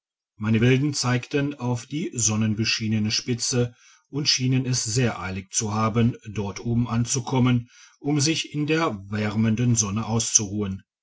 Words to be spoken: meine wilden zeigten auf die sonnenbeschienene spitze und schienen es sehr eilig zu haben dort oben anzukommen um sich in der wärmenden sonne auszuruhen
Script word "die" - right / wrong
right